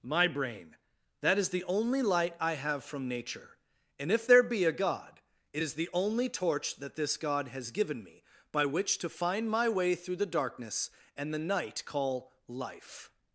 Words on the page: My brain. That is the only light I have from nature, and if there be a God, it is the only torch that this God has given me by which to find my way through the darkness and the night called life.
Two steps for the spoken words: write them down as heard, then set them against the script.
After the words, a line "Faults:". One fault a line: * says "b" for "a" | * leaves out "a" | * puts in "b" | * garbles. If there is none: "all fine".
My brain. That is the only light I have from nature, and if there be a God, it is the only torch that this God has given me by which to find my way through the darkness and the night call life.
Faults:
* says "call" for "called"